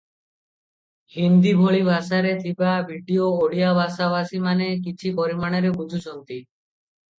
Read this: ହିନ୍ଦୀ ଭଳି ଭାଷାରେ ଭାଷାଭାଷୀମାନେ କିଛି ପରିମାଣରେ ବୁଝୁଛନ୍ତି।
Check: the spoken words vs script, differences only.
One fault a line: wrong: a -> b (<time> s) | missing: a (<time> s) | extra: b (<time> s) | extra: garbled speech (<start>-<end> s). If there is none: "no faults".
extra: ଥିବା ଭିଡିଓ ଓଡ଼ିଆ (2.4 s)